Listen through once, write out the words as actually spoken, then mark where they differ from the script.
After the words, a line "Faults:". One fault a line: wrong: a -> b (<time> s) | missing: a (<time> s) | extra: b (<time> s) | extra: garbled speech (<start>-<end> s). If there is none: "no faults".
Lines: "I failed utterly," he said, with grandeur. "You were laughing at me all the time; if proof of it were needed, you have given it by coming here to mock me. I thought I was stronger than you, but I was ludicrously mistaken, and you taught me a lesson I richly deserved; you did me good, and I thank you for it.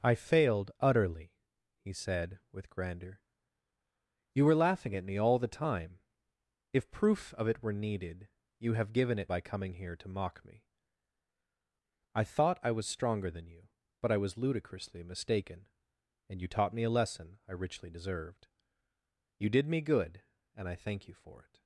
"I failed utterly," he said, with grandeur. "You were laughing at me all the time; if proof of it were needed, you have given it by coming here to mock me. I thought I was stronger than you, but I was ludicrously mistaken, and you taught me a lesson I richly deserved; you did me good, and I thank you for it.
Faults:
no faults